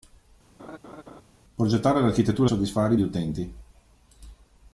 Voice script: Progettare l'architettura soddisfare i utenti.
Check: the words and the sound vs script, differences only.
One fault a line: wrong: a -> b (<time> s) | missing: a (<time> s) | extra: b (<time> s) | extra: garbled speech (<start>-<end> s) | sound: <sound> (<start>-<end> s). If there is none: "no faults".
sound: laugh (0.6-1.2 s)